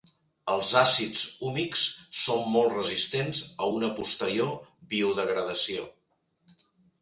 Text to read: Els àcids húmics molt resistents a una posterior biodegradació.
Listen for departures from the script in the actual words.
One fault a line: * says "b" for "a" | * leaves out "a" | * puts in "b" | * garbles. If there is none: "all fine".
* puts in "són"